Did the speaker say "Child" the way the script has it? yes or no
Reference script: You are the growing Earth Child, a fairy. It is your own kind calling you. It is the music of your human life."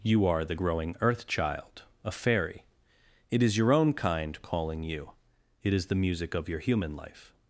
yes